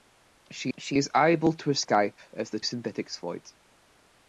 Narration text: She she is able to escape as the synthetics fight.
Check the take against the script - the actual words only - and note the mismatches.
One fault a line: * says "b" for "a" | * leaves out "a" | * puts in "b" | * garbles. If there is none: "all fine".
all fine